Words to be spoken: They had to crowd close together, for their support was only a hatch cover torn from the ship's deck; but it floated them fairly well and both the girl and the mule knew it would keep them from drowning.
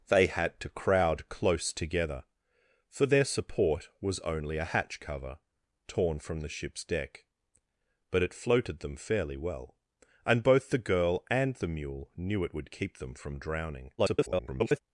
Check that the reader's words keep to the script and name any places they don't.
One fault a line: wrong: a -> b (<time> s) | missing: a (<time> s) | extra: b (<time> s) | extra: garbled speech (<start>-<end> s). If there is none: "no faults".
extra: garbled speech (14.0-14.8 s)